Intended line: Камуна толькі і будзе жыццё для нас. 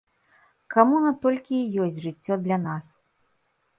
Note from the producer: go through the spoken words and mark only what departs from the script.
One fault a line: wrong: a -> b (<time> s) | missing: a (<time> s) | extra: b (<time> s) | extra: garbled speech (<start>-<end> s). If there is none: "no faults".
wrong: будзе -> ёсць (1.9 s)